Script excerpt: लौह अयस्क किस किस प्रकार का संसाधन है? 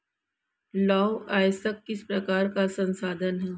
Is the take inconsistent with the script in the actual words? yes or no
yes